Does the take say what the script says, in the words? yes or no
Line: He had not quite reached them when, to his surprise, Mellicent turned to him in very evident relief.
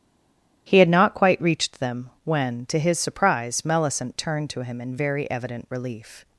yes